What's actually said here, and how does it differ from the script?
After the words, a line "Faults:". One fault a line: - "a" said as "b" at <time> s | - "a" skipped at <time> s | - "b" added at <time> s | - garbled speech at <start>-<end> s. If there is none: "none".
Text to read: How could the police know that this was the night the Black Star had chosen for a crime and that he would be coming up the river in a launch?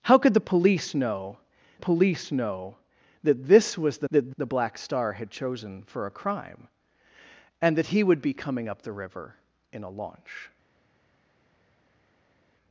How could the police know police know that this was the that the Black Star had chosen for a crime and that he would be coming up the river in a launch?
Faults:
- "police know" added at 1.8 s
- "night" said as "that" at 4.1 s